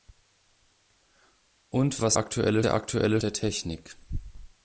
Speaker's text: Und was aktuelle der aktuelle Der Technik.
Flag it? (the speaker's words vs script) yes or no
no